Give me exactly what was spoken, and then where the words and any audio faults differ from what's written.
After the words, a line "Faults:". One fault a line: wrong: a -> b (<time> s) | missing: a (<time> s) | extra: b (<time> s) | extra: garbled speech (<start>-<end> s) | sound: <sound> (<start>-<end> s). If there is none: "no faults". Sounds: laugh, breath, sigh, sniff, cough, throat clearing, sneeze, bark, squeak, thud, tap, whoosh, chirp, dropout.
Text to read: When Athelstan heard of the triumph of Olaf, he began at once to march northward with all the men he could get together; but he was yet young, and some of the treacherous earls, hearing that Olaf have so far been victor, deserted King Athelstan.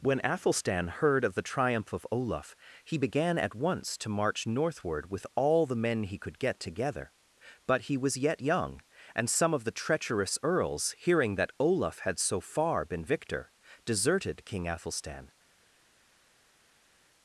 When Athelstan heard of the triumph of Olaf, he began at once to march northward with all the men he could get together; but he was yet young, and some of the treacherous earls, hearing that Olaf had so far been victor, deserted King Athelstan.
Faults:
wrong: have -> had (12.0 s)